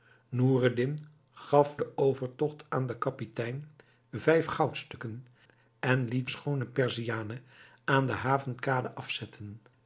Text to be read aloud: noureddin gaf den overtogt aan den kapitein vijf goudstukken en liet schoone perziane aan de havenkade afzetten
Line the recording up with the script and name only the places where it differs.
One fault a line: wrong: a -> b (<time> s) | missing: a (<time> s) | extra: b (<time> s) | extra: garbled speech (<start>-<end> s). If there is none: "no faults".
no faults